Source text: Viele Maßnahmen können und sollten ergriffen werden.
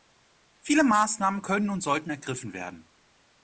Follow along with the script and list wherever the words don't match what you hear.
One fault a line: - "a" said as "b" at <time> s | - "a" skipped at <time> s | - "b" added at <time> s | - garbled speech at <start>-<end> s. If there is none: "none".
none